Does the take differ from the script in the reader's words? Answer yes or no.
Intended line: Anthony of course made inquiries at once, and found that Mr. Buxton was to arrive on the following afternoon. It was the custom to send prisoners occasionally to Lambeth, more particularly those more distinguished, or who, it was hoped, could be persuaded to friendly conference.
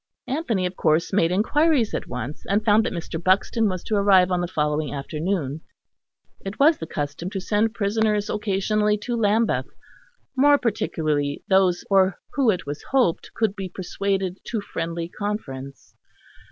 yes